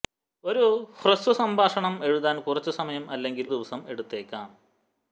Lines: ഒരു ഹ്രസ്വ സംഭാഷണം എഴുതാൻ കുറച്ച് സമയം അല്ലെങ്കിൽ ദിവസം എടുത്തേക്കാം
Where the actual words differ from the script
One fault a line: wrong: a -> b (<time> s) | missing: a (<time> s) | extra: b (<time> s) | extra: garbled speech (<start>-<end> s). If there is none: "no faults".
no faults